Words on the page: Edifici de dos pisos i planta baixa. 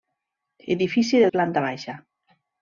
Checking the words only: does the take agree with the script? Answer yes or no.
no